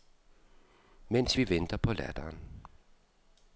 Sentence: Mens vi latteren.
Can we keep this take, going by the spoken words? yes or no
no